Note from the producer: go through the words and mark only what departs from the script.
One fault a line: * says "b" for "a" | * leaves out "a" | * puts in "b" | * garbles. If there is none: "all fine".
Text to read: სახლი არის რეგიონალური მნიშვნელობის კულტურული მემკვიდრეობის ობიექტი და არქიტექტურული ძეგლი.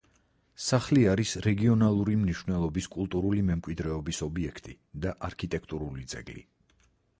all fine